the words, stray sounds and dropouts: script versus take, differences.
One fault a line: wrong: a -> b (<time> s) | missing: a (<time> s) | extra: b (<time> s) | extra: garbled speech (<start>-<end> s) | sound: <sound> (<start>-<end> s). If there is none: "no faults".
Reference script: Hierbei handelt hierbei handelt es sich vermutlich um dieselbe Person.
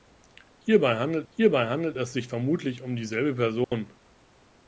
sound: dropout (3.6-3.7 s)